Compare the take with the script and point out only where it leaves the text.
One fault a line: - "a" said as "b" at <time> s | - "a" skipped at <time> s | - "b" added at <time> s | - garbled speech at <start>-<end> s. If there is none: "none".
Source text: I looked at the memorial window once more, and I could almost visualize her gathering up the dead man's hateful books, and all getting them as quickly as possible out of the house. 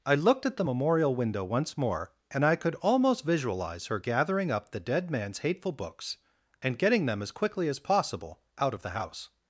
- "all" skipped at 6.8 s